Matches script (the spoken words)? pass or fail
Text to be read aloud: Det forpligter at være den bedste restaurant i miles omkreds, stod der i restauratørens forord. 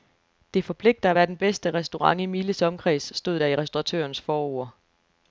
pass